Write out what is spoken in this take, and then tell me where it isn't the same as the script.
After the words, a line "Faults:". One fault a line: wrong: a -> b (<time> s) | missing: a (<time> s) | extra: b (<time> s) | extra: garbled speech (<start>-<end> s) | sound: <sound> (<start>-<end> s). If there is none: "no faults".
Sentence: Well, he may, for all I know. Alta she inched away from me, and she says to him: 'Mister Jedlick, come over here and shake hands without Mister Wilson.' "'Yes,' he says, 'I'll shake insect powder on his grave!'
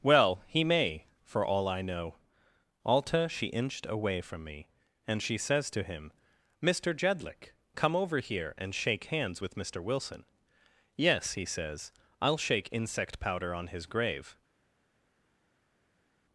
Well, he may, for all I know. Alta she inched away from me, and she says to him: 'Mister Jedlick, come over here and shake hands with Mister Wilson.' "'Yes,' he says, 'I'll shake insect powder on his grave!'
Faults:
wrong: without -> with (9.4 s)